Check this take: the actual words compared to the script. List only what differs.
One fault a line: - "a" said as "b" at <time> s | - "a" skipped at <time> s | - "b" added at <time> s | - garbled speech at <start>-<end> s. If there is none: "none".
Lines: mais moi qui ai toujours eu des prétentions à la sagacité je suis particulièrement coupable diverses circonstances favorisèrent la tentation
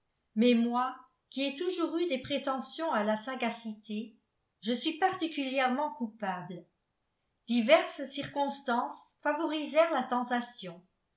none